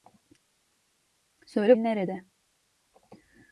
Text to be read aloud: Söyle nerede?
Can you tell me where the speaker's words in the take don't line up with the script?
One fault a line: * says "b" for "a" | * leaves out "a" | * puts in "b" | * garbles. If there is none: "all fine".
all fine